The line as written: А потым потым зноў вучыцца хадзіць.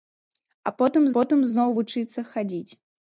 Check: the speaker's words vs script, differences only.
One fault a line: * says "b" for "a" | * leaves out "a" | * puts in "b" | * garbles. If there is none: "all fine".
all fine